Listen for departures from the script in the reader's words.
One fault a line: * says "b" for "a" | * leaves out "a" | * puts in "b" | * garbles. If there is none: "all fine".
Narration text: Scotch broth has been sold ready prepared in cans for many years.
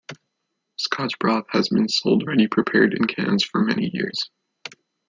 all fine